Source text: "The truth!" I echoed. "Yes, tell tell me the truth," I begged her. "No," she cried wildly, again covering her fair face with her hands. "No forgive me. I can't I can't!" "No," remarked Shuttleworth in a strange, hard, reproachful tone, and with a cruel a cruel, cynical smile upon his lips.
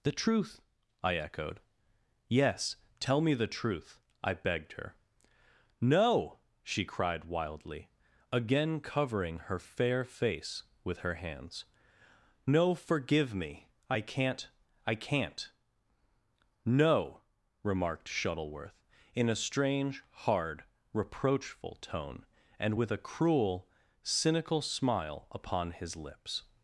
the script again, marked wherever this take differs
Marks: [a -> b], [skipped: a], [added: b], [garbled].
"The truth!" I echoed. "Yes, tell [skipped: tell] me the truth," I begged her. "No," she cried wildly, again covering her fair face with her hands. "No forgive me. I can't I can't!" "No," remarked Shuttleworth in a strange, hard, reproachful tone, and with a cruel [skipped: a cruel,] cynical smile upon his lips.